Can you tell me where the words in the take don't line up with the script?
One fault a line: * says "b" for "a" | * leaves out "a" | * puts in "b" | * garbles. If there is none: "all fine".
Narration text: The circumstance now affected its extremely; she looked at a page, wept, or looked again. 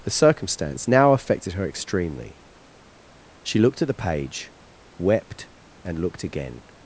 * says "her" for "its"
* says "the" for "a"
* says "and" for "or"